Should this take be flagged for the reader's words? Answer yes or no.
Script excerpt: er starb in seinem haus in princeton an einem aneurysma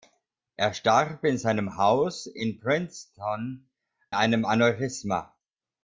yes